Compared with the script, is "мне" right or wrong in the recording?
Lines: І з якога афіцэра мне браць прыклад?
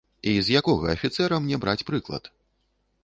right